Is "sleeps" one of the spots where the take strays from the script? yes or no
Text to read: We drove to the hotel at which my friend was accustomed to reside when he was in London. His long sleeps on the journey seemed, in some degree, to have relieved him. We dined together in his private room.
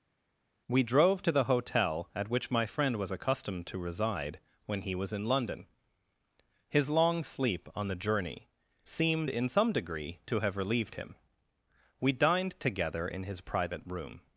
yes